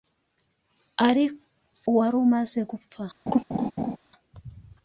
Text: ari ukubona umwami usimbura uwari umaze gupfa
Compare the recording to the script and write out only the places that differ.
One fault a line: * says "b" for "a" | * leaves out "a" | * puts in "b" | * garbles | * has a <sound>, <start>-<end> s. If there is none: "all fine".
* leaves out "ukubona umwami usimbura"
* has a laugh, 3.3-4.0 s